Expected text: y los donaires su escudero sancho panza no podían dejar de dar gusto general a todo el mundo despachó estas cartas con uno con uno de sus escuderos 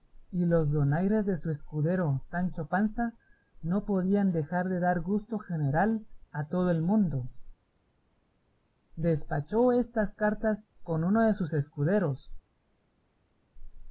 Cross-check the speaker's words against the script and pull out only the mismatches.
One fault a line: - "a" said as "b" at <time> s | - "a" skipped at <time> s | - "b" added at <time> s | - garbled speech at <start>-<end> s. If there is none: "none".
- "de" added at 1.3 s
- "con uno" skipped at 11.2 s